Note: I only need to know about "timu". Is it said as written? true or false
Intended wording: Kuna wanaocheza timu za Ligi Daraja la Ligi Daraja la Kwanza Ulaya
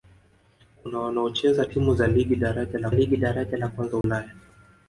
true